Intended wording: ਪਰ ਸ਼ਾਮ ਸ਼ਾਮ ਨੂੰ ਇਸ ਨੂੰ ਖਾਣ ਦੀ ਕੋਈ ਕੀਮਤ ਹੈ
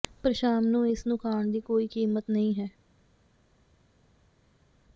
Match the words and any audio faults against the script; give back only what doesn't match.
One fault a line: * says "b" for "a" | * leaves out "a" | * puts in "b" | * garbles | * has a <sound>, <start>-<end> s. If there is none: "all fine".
* leaves out "ਸ਼ਾਮ"
* puts in "ਨਹੀਂ"